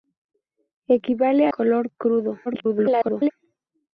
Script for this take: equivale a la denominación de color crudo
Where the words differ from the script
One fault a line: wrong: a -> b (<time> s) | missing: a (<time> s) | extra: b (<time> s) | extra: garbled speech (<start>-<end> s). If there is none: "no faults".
missing: la denominación de (1.5 s)
extra: garbled speech (2.5-3.3 s)